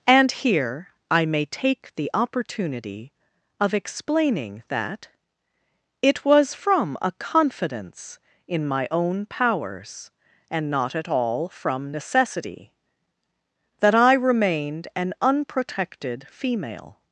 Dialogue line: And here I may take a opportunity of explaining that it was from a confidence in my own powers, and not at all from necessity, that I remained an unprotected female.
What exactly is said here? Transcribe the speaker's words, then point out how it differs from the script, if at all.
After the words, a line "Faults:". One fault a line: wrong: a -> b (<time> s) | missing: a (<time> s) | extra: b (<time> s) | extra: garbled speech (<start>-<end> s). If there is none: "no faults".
And here I may take the opportunity of explaining that it was from a confidence in my own powers, and not at all from necessity, that I remained an unprotected female.
Faults:
wrong: a -> the (1.9 s)